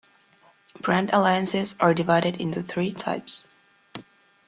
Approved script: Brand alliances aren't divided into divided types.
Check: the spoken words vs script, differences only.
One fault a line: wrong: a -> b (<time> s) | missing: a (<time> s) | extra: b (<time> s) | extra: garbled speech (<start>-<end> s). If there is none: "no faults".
wrong: aren't -> are (1.8 s)
wrong: divided -> three (2.6 s)